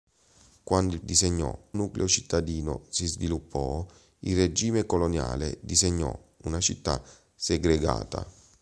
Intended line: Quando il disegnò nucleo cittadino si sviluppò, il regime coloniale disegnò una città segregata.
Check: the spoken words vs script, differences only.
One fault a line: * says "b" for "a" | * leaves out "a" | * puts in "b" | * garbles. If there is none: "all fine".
all fine